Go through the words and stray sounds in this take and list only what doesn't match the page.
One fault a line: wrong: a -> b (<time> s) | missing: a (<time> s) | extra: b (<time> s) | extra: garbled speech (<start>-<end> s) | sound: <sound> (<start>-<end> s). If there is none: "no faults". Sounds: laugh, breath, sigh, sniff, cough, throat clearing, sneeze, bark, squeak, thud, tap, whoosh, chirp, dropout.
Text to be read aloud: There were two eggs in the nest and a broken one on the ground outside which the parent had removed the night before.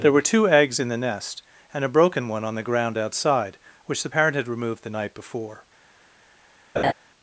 sound: laugh (6.8-6.9 s)